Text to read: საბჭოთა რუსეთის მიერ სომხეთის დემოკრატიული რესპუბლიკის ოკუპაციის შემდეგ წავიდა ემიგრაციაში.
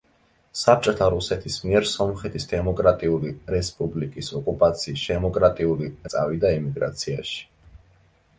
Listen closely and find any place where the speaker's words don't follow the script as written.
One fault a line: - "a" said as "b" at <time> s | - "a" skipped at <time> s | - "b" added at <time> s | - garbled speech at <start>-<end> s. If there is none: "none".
- "შემდეგ" said as "დემოკრატიული" at 5.1 s